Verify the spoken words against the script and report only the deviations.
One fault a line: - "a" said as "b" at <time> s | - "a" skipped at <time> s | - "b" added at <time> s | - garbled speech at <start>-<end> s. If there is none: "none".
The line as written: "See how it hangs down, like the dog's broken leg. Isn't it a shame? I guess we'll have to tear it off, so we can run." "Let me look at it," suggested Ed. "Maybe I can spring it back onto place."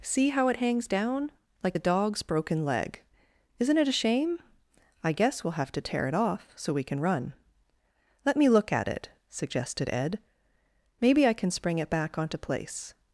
none